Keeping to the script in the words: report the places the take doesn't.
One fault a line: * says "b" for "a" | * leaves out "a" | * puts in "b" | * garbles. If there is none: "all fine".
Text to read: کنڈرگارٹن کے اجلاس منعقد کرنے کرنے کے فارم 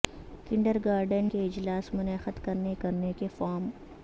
all fine